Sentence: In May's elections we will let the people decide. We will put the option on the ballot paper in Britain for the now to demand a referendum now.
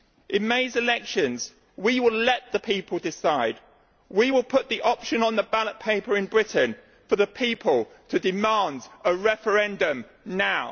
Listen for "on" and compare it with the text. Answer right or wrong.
right